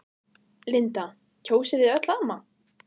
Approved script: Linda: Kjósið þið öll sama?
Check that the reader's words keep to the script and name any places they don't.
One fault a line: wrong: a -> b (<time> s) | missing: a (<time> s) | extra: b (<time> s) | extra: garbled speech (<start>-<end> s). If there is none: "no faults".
no faults